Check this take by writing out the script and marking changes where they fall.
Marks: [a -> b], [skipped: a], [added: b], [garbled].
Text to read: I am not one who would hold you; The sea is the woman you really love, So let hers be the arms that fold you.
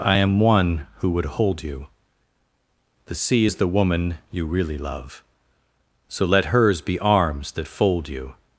I am [skipped: not] one who would hold you; The sea is the woman you really love, So let hers be [skipped: the] arms that fold you.